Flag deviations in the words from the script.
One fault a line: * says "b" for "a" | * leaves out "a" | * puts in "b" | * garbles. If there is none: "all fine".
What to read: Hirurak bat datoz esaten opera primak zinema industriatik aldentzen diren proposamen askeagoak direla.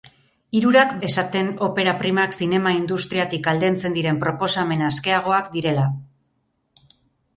* leaves out "bat datoz"